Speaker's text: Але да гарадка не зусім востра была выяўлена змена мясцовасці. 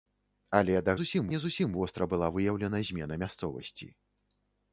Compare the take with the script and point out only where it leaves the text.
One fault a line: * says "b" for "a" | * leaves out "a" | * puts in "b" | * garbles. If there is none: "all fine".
* says "зусім" for "гарадка"